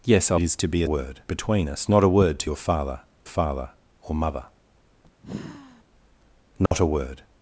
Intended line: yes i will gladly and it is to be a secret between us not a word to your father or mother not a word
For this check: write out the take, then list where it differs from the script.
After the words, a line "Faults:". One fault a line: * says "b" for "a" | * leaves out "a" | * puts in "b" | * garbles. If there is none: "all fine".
yes i it is to be a word between us not a word to your father father or mother not a word
Faults:
* leaves out "will gladly and"
* says "word" for "secret"
* puts in "father"